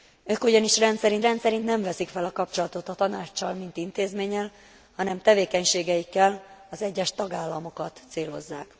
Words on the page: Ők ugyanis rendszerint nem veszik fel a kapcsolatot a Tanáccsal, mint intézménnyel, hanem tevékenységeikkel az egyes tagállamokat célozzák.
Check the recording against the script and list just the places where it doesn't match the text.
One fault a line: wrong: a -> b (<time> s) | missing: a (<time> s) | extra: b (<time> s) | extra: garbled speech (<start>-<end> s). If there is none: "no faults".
extra: rendszerint (1.2 s)